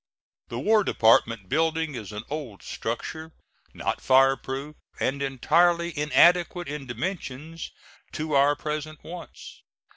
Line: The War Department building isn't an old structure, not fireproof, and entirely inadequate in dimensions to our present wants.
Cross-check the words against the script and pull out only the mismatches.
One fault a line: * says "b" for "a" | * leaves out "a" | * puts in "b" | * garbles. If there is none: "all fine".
* says "is" for "isn't"